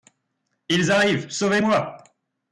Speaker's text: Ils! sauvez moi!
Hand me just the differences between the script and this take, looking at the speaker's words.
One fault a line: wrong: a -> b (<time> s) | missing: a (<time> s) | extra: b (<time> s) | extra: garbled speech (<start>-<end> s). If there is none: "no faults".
extra: arrivent (0.9 s)